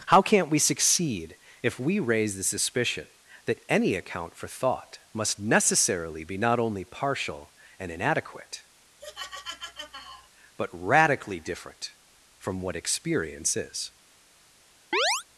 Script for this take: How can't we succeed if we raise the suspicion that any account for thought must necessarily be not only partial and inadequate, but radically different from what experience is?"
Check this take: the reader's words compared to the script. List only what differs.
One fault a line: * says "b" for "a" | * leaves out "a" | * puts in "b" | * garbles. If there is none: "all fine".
all fine